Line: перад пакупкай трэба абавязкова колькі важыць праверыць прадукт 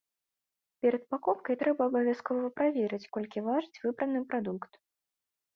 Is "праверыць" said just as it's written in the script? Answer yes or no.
no